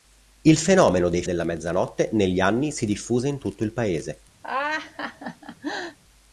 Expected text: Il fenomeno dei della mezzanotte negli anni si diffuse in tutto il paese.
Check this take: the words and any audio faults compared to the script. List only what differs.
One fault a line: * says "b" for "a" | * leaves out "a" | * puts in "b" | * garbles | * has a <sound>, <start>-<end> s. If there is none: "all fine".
* has a laugh, 4.4-6.0 s